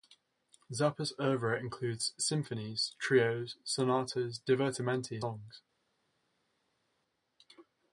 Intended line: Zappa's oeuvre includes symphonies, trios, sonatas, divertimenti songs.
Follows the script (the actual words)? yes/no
yes